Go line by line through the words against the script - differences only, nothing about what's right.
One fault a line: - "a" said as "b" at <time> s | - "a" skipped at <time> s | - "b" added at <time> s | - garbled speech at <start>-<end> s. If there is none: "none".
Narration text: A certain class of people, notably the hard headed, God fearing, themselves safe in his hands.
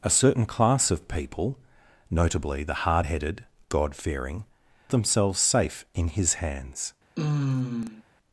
none